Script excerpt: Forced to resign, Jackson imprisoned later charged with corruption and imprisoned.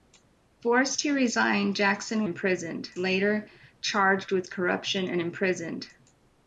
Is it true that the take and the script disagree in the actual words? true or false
false